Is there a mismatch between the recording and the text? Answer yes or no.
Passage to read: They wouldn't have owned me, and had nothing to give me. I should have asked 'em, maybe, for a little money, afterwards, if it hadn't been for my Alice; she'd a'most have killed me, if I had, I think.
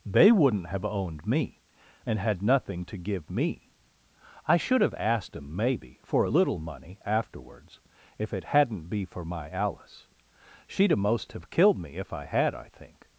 yes